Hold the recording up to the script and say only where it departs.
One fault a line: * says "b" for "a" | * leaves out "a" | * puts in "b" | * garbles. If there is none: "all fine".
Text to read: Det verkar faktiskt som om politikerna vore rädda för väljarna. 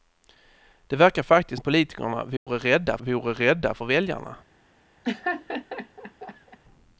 * leaves out "som"
* puts in "vore rädda"